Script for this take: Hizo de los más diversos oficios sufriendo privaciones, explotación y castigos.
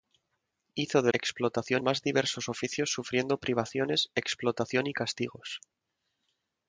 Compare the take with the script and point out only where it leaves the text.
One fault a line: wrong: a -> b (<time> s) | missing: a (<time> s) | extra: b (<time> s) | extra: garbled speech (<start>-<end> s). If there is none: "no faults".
wrong: los -> explotación (1.1 s)